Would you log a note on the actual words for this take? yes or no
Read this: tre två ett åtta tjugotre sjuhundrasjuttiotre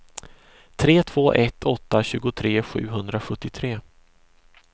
no